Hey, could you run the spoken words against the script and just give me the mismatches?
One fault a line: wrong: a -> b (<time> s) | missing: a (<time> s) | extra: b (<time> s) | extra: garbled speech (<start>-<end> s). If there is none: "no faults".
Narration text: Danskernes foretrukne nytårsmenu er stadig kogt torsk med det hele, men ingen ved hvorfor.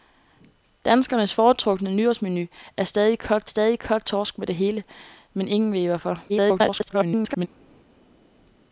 extra: stadig kogt (3.4 s)
extra: garbled speech (6.3-7.5 s)